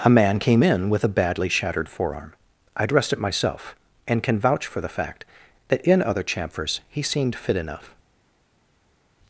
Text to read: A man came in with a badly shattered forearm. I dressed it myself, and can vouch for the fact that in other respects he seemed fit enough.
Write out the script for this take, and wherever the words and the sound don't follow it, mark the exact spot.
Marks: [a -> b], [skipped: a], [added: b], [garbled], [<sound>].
A man came in with a badly shattered forearm. I dressed it myself, and can vouch for the fact that in other [respects -> chamfers] he seemed fit enough.